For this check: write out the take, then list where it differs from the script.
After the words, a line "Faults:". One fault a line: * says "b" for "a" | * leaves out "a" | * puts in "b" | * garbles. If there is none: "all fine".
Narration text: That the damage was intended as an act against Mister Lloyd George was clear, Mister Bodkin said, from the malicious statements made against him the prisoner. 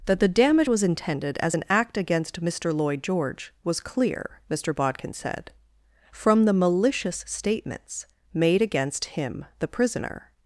That the damage was intended as an act against Mister Lloyd George was clear, Mister Bodkin said, from the malicious statements made against him the prisoner.
Faults:
all fine